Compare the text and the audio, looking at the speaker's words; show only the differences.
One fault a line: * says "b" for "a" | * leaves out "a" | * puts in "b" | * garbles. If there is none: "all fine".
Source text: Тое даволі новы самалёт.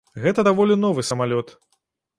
* says "Гэта" for "Тое"